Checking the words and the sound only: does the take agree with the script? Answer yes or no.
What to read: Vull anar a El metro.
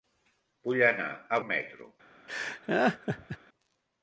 no